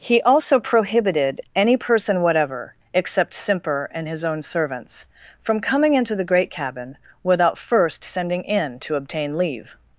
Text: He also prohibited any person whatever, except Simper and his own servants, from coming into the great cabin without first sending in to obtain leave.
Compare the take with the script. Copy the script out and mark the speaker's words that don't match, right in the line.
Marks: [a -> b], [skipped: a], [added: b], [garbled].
He also prohibited any person whatever, except Simper and his own servants, from coming into the great cabin without first sending in to obtain leave.